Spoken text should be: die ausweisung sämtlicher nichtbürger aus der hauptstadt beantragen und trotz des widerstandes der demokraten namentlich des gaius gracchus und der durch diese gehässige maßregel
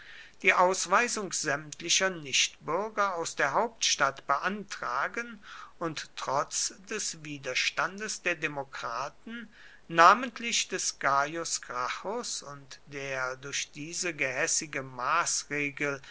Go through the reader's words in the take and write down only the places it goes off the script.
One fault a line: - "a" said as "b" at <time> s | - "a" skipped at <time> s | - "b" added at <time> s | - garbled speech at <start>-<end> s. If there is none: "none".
none